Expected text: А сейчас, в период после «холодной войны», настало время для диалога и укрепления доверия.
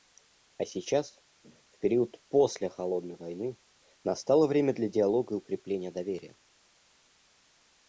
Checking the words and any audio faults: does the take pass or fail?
pass